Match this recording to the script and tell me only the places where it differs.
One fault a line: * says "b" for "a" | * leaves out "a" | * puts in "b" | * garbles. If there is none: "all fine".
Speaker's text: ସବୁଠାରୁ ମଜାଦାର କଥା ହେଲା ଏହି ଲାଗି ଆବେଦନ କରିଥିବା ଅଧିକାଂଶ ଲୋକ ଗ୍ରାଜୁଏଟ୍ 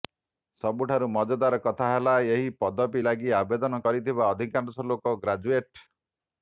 * puts in "ପଦବୀ"